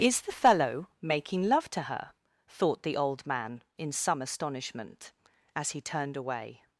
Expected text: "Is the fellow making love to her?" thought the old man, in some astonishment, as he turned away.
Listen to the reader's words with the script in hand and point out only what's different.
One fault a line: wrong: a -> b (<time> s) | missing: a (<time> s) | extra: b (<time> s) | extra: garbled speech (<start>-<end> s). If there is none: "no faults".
no faults